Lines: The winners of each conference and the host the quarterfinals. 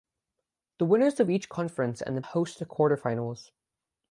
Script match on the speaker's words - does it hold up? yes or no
yes